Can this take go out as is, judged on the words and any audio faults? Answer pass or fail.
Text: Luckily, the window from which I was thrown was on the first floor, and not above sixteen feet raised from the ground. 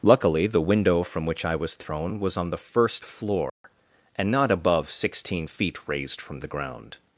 fail